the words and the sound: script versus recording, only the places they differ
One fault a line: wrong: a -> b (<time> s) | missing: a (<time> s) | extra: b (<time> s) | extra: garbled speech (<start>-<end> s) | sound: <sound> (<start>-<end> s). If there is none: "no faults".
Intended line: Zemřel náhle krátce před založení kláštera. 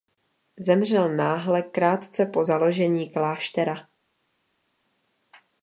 wrong: před -> po (2.2 s)